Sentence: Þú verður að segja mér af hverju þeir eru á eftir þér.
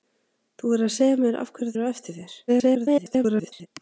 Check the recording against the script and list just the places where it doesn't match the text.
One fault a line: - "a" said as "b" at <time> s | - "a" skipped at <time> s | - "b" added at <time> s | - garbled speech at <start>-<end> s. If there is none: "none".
- "þeir" skipped at 1.8 s
- garbled speech at 2.5-3.7 s